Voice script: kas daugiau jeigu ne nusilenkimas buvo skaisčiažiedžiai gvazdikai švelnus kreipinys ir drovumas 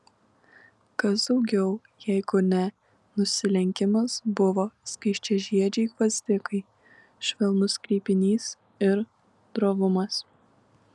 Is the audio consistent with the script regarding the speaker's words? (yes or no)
yes